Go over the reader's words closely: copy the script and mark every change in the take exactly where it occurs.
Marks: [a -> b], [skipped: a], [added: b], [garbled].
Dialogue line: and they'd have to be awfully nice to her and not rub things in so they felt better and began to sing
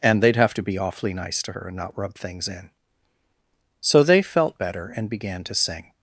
and they'd have to be awfully nice to her and not rub things in so they felt better and began to sing